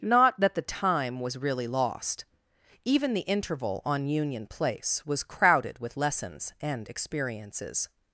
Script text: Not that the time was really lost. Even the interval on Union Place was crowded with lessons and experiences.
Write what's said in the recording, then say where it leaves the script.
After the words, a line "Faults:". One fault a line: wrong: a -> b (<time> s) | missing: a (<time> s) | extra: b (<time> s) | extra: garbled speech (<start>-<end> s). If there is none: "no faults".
Not that the time was really lost. Even the interval on Union Place was crowded with lessons and experiences.
Faults:
no faults